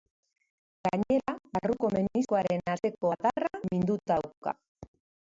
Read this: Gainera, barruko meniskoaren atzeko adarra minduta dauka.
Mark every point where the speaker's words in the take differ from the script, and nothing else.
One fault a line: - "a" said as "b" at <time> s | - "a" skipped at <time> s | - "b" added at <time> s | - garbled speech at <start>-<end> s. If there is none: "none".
none